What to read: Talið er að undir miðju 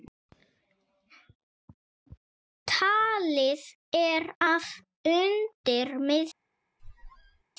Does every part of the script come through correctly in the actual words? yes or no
yes